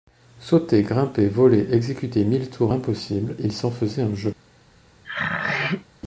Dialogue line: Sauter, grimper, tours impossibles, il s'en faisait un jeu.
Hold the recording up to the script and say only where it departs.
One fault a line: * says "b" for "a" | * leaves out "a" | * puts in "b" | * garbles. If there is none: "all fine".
* puts in "voler exécuter mille"